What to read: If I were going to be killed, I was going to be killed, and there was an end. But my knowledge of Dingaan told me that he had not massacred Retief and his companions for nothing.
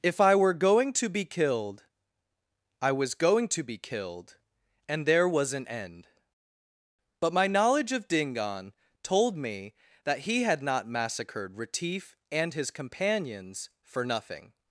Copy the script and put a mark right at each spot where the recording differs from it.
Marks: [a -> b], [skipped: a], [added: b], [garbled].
If I were going to be killed, I was going to be killed, and there was an end. But my knowledge of Dingaan told me that he had not massacred Retief and his companions for nothing.